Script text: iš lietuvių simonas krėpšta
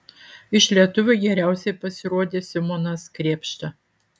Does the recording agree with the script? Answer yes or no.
no